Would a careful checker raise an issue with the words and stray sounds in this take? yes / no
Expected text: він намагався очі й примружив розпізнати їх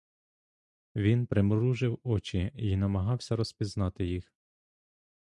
yes